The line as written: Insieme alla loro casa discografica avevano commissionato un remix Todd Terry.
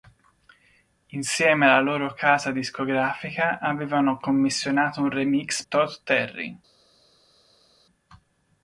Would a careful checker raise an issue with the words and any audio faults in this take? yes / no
no